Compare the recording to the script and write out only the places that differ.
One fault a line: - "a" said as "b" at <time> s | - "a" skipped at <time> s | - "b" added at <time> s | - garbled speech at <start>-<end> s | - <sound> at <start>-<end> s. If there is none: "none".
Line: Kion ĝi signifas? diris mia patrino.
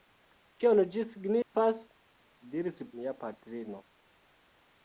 - dropout at 1.4-1.6 s